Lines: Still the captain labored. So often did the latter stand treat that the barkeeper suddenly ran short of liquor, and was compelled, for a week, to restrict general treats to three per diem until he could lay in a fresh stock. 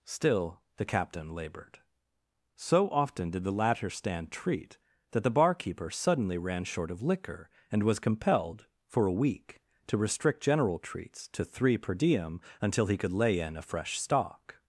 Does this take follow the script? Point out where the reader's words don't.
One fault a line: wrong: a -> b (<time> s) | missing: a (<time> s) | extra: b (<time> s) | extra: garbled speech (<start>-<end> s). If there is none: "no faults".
no faults